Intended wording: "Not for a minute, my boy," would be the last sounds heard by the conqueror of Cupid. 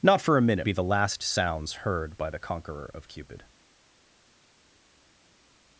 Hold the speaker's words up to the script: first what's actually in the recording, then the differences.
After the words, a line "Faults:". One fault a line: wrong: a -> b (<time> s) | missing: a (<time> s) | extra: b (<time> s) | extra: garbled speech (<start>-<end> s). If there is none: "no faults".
"Not for a minute, be the last sounds heard by the conqueror of Cupid.
Faults:
missing: my boy would (0.7 s)